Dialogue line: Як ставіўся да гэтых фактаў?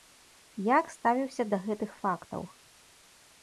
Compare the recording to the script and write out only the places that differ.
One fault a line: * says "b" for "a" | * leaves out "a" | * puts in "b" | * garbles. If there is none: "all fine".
all fine